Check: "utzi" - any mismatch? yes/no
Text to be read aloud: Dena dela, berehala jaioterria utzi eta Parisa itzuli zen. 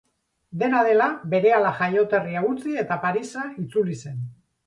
no